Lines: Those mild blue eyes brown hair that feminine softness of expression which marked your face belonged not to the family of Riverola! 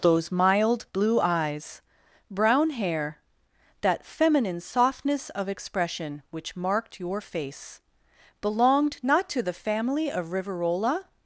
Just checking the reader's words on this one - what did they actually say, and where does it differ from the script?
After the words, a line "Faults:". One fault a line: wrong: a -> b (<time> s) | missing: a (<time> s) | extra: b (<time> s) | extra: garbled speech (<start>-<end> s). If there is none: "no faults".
Those mild blue eyes brown hair that feminine softness of expression which marked your face belonged not to the family of Riverola!
Faults:
no faults